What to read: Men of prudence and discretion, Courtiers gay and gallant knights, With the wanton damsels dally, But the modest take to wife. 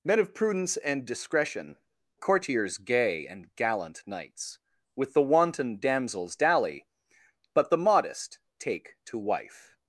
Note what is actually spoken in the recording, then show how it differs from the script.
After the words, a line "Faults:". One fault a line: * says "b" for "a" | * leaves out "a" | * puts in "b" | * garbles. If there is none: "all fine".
Men of prudence and discretion, Courtiers gay and gallant knights, With the wanton damsels dally, But the modest take to wife.
Faults:
all fine